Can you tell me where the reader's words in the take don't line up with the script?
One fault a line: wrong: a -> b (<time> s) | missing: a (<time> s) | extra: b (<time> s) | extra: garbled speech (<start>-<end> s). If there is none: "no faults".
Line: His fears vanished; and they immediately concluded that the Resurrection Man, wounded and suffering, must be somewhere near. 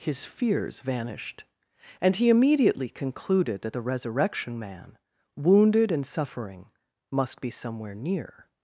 wrong: they -> he (2.1 s)